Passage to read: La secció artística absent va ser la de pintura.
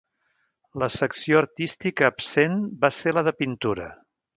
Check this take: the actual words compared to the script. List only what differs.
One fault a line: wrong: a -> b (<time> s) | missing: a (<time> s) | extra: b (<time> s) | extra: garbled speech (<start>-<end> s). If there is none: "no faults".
no faults